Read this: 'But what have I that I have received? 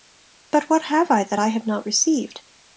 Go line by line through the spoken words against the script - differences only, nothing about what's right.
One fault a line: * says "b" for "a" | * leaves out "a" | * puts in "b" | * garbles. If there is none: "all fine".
* puts in "not"